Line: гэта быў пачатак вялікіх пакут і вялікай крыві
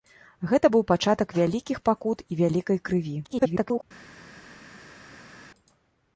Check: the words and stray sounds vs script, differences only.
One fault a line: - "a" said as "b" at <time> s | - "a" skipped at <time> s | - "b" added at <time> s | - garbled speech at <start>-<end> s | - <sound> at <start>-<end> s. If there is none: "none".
- garbled speech at 3.2-3.8 s